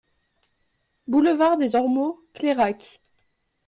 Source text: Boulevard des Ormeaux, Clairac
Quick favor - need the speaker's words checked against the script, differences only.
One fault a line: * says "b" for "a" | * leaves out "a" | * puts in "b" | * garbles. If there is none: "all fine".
all fine